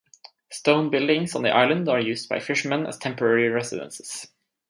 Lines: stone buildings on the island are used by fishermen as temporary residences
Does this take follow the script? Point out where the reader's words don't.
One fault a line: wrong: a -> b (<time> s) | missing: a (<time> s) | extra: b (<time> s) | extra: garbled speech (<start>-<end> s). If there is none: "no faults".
no faults